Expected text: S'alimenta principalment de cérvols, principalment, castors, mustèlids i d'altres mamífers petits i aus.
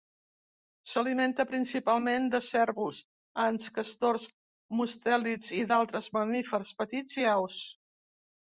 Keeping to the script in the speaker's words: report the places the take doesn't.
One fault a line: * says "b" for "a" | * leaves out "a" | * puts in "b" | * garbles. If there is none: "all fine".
* says "ants" for "principalment"